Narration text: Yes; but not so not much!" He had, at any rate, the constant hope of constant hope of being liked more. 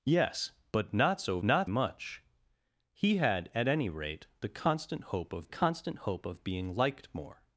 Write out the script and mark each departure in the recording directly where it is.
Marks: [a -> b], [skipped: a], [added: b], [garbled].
Yes; but not so not much!" He had, at any rate, the constant hope of constant hope of being liked more.